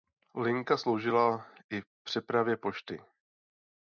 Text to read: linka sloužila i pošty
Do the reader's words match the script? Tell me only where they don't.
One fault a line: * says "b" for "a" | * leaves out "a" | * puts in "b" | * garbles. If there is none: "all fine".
* puts in "přepravě"